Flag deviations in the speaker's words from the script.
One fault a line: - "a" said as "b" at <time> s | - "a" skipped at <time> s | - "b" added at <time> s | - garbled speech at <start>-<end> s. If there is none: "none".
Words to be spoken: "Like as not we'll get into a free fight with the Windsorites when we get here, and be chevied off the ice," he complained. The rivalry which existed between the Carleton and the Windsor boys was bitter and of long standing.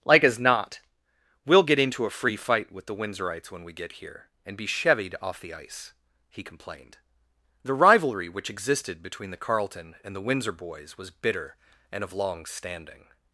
none